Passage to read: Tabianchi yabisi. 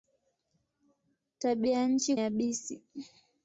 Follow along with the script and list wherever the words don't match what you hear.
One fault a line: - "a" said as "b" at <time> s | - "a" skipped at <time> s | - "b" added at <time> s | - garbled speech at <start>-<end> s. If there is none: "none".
none